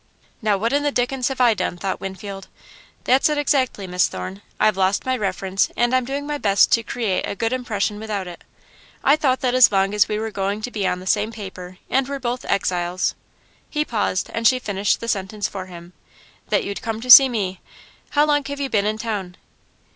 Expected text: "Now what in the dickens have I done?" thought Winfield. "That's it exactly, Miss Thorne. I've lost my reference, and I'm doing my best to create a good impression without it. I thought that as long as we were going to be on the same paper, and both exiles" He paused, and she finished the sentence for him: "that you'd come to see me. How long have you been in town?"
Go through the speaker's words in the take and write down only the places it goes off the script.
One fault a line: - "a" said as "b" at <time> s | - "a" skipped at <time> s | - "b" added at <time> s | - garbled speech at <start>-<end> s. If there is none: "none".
- "were" added at 12.1 s